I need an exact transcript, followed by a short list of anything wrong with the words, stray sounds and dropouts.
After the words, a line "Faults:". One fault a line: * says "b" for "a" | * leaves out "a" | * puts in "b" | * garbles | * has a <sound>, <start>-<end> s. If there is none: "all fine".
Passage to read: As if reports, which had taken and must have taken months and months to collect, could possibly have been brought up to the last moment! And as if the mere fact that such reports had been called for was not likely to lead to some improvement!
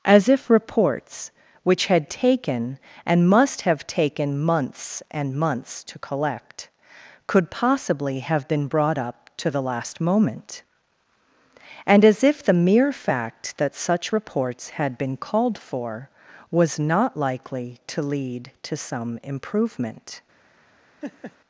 As if reports, which had taken and must have taken months and months to collect, could possibly have been brought up to the last moment! And as if the mere fact that such reports had been called for was not likely to lead to some improvement!
Faults:
* has a laugh, 21.0-21.4 s